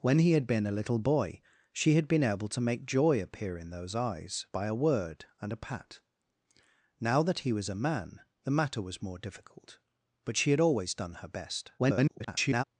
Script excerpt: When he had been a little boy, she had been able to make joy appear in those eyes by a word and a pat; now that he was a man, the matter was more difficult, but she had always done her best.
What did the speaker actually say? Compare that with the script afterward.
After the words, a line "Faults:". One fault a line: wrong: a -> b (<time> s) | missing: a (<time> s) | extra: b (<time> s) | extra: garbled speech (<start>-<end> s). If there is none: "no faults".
When he had been a little boy, she had been able to make joy appear in those eyes by a word and a pat; now that he was a man, the matter was more difficult, but she had always done her best. [garbled]
Faults:
extra: garbled speech (11.8-12.6 s)